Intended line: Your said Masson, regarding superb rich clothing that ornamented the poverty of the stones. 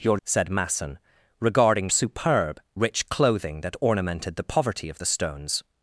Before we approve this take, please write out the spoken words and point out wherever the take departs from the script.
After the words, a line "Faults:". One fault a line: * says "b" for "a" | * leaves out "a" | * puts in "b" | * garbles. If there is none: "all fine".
Your said Masson, regarding superb rich clothing that ornamented the poverty of the stones.
Faults:
all fine